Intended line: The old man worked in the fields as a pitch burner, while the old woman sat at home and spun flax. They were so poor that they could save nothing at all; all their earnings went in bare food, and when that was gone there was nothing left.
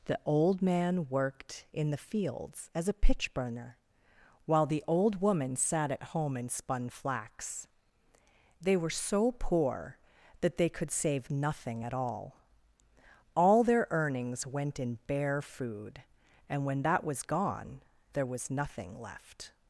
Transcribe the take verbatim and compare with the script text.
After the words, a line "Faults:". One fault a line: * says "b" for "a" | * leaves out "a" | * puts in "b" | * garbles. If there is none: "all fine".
The old man worked in the fields as a pitch burner, while the old woman sat at home and spun flax. They were so poor that they could save nothing at all; all their earnings went in bare food, and when that was gone there was nothing left.
Faults:
all fine